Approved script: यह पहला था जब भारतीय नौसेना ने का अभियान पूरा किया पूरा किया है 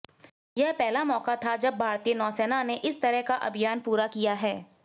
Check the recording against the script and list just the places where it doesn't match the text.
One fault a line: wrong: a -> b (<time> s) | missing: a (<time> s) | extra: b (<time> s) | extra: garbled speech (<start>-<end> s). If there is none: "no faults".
extra: मौका (1.0 s)
extra: इस तरह (2.8 s)
missing: पूरा किया (4.3 s)